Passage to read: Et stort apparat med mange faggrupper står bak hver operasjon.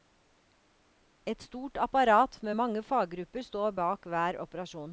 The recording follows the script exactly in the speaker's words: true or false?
true